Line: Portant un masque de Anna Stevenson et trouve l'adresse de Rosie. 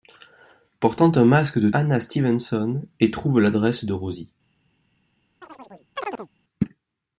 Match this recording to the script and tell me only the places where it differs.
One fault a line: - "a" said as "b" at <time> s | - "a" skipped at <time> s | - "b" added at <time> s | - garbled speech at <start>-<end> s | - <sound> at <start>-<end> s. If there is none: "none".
- chirp at 5.4-6.3 s